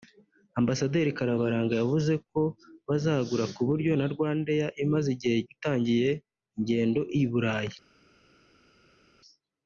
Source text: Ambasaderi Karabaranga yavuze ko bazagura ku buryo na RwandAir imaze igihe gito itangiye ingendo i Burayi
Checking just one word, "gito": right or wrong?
wrong